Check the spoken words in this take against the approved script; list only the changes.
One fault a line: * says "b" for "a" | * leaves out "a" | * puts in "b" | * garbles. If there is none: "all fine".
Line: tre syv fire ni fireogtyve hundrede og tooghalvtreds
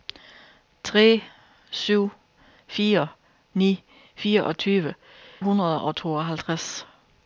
all fine